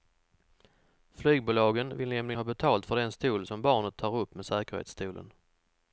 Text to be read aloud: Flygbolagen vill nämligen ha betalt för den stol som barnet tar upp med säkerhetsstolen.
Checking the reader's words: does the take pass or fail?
pass